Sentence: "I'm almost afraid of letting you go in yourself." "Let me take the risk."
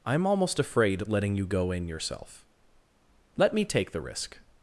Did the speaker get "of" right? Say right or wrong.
wrong